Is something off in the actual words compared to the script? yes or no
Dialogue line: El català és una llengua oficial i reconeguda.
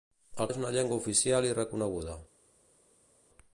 yes